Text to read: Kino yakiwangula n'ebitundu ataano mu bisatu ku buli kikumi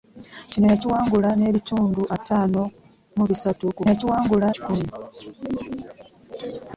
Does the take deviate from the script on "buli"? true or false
true